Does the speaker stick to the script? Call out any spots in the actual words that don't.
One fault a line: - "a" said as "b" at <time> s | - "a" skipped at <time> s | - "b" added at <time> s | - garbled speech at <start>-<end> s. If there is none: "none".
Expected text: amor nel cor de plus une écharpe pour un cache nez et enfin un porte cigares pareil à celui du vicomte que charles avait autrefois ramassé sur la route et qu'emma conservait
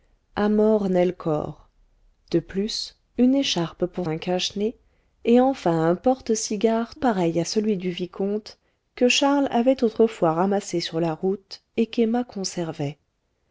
none